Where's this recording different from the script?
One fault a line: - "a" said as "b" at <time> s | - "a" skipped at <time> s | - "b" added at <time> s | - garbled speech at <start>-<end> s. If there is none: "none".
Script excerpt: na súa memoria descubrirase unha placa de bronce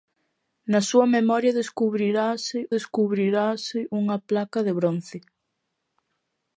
- "descubrirase" added at 2.8 s